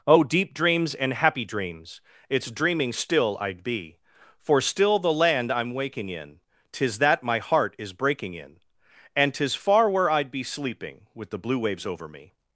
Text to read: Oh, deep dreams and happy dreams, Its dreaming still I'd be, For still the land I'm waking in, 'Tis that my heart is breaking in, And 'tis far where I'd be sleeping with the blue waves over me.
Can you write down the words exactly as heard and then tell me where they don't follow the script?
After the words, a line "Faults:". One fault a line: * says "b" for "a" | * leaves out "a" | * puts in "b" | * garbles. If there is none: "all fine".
Oh, deep dreams and happy dreams, Its dreaming still I'd be, For still the land I'm waking in, 'Tis that my heart is breaking in, And 'tis far where I'd be sleeping with the blue waves over me.
Faults:
all fine